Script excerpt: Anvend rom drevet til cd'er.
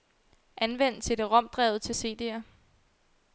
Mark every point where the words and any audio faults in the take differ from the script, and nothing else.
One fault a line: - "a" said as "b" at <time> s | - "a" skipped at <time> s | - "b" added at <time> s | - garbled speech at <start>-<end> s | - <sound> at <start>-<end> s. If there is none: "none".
- "cd" added at 1.0 s